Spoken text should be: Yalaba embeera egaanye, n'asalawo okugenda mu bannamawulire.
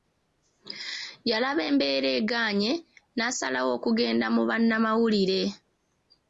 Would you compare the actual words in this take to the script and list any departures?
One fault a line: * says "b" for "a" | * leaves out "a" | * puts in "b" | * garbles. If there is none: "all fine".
all fine